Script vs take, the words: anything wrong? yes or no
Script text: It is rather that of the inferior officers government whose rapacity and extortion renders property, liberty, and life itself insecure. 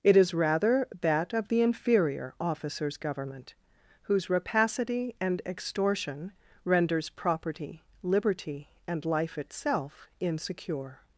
no